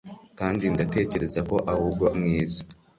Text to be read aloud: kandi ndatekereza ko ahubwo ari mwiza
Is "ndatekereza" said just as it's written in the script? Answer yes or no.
yes